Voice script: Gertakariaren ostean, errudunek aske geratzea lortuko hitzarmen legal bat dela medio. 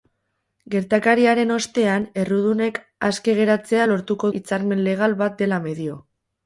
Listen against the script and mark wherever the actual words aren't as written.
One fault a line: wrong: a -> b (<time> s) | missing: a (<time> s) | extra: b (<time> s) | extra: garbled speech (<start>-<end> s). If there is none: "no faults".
no faults